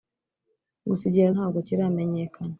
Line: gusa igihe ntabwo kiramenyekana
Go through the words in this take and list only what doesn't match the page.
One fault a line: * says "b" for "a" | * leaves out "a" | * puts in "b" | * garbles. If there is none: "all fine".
all fine